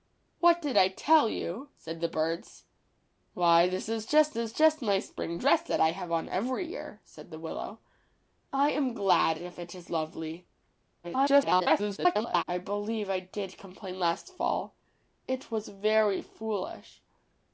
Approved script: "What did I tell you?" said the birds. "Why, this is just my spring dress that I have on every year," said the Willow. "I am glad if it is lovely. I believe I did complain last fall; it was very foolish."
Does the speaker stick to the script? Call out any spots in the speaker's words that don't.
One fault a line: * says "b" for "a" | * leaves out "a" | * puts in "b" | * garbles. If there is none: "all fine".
* puts in "is just"
* garbles